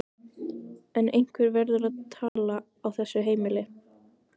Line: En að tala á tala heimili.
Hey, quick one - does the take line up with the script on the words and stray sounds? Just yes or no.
no